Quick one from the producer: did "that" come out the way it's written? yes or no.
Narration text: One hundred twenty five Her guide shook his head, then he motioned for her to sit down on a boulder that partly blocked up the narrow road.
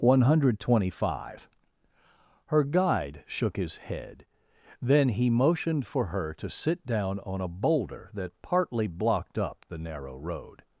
yes